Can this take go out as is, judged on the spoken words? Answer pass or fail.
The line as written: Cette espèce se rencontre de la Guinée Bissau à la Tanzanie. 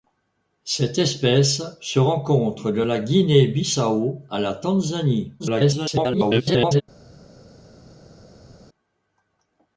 fail